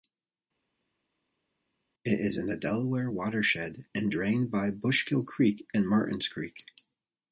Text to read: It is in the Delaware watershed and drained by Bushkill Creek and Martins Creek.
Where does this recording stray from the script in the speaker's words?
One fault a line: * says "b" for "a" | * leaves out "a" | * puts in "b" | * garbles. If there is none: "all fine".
all fine